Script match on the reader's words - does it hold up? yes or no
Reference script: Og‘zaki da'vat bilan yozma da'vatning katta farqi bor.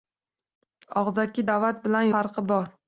no